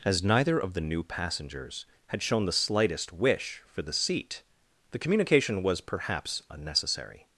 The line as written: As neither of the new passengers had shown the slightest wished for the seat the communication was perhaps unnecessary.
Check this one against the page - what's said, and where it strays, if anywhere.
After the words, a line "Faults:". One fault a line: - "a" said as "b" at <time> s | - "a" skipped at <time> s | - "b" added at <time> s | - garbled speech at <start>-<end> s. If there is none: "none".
As neither of the new passengers had shown the slightest wish for the seat the communication was perhaps unnecessary.
Faults:
- "wished" said as "wish" at 3.1 s